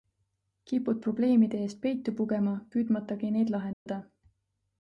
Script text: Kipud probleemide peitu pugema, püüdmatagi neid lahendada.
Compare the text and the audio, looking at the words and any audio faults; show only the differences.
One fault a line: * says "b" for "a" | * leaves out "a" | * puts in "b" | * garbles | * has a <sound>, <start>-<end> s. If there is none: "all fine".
* puts in "eest"
* has a dropout, 3.7-3.9 s